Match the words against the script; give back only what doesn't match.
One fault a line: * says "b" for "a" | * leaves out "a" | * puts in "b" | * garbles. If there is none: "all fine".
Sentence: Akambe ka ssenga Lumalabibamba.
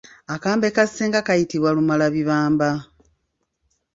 * puts in "kayitibwa"